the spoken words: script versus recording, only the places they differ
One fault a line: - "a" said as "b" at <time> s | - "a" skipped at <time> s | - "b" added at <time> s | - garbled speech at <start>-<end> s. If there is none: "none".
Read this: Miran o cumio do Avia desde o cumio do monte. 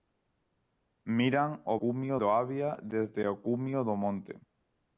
none